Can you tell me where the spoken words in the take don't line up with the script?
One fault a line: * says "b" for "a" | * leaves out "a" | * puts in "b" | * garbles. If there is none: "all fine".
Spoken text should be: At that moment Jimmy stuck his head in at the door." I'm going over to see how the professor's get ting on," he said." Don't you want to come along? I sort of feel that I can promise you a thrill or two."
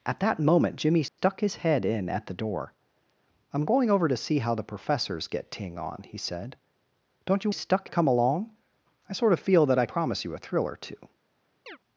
* says "stuck" for "want"
* leaves out "can"